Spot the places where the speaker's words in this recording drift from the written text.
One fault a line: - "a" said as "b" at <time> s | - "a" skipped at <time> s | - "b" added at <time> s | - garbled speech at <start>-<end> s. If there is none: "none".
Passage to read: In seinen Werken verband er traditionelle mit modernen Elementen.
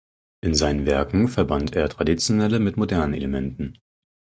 none